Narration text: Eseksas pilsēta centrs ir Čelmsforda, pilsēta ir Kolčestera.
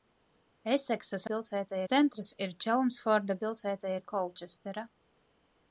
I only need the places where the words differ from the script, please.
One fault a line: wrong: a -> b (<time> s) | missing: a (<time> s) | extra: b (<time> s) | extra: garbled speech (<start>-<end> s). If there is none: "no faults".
no faults